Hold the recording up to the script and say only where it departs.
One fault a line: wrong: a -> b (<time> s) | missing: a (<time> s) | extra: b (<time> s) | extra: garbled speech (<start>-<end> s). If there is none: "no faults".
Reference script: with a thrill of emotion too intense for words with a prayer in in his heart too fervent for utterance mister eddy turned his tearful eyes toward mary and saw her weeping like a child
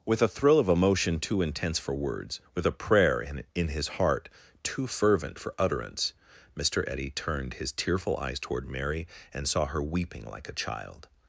no faults